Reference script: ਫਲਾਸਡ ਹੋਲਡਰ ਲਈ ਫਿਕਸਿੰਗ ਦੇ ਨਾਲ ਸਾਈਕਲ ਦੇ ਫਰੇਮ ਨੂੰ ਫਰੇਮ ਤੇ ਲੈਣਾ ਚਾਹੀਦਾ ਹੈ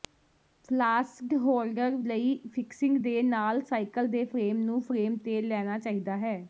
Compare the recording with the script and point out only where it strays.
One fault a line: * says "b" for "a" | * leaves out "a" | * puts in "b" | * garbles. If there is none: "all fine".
all fine